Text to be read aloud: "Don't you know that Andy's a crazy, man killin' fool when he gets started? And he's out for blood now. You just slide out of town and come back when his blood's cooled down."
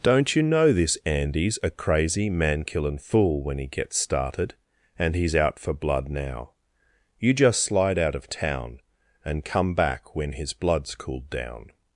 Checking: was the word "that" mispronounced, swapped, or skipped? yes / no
yes